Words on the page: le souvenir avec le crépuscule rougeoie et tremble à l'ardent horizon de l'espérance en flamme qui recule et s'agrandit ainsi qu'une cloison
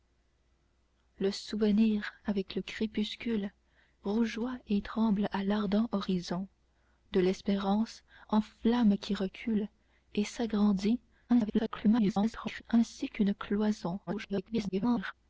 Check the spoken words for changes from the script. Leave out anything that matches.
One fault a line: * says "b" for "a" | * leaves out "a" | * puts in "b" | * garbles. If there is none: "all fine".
* garbles
* garbles